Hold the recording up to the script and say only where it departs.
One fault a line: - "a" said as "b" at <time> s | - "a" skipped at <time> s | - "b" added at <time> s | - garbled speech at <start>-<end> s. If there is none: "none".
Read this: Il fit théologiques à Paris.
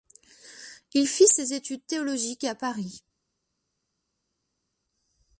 - "ses études" added at 1.2 s